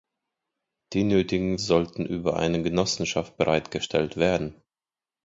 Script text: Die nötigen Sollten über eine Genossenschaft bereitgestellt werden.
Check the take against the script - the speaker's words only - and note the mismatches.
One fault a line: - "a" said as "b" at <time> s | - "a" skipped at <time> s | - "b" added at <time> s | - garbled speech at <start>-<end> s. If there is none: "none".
none